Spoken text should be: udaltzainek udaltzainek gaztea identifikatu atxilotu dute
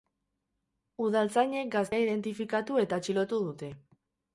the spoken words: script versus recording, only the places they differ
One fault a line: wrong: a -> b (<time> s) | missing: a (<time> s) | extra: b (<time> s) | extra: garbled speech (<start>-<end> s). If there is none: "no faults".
missing: udaltzainek (1.7 s)
extra: eta (2.9 s)